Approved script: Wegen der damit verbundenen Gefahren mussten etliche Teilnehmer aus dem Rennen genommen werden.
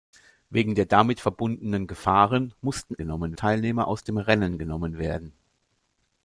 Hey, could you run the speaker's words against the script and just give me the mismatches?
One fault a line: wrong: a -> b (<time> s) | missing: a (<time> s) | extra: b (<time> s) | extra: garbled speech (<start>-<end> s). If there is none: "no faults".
wrong: etliche -> genommen (3.0 s)